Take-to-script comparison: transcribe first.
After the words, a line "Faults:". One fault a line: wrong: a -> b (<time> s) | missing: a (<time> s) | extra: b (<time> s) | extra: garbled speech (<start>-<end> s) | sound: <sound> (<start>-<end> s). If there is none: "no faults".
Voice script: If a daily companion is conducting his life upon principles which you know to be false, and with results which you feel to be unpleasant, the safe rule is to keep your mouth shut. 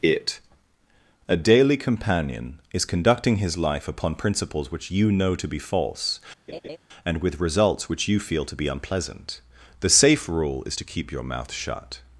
It a daily companion is conducting his life upon principles which you know to be false, and with results which you feel to be unpleasant, the safe rule is to keep your mouth shut.
Faults:
wrong: If -> It (0.0 s)
sound: laugh (6.5-6.8 s)